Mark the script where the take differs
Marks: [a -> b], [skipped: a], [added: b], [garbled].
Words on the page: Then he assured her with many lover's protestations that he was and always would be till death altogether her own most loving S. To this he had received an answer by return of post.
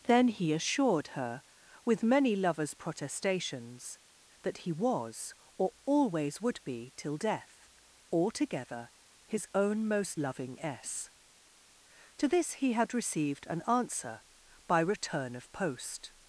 Then he assured her with many lover's protestations that he was [and -> or] always would be till death altogether [her -> his] own most loving S. To this he had received an answer by return of post.